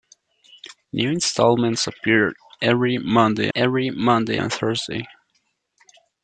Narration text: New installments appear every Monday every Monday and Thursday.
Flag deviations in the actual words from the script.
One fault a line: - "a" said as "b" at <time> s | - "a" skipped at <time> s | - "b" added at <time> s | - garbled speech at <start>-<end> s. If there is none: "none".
none